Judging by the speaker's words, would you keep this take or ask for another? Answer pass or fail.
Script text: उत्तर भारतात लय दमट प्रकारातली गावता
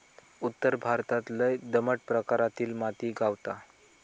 fail